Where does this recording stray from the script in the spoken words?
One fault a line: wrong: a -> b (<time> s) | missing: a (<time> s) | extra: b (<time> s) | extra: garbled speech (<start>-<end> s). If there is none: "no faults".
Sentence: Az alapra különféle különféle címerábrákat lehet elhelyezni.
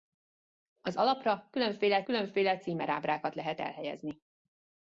no faults